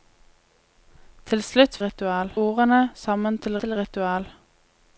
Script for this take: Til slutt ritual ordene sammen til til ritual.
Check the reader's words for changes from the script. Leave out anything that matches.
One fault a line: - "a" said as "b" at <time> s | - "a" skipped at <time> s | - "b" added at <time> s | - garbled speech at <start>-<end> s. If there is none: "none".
none